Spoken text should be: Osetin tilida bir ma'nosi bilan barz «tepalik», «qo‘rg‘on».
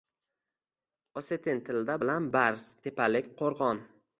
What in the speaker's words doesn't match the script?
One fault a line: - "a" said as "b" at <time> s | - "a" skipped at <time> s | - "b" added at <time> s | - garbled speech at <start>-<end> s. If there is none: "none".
- "bir ma'nosi" skipped at 2.0 s